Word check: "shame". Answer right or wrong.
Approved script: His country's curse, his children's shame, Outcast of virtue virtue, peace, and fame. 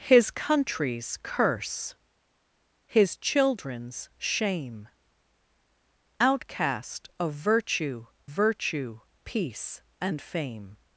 right